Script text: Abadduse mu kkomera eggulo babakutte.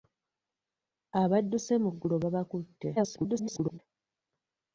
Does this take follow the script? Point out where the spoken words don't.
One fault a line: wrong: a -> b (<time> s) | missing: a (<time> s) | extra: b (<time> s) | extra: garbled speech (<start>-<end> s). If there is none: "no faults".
missing: kkomera (1.9 s)
extra: garbled speech (3.0-3.8 s)